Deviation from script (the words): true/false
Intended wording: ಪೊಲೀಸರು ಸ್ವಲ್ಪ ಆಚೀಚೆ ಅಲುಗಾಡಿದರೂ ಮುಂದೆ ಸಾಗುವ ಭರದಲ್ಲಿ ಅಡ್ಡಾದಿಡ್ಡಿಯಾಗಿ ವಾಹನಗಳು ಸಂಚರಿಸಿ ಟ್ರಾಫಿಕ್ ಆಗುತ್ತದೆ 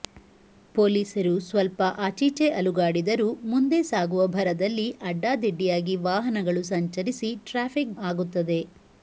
false